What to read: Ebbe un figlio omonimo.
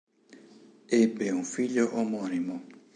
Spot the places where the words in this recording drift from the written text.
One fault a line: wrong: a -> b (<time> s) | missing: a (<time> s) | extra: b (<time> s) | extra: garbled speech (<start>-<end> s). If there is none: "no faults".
no faults